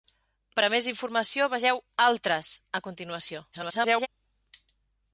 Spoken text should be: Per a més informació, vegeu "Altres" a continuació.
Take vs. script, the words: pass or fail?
fail